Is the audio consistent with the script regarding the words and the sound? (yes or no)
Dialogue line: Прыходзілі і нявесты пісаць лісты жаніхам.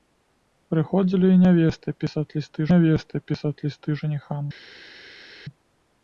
no